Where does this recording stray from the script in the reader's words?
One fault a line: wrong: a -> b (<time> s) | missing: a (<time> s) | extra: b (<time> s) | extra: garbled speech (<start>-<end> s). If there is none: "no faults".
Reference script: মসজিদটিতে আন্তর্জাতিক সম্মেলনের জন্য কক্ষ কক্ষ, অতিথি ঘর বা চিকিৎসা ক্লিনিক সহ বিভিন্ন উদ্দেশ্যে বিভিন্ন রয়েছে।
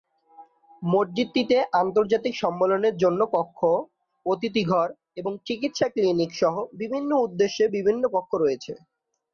missing: কক্ষ (3.6 s)
wrong: বা -> এবং (5.2 s)
extra: কক্ষ (8.2 s)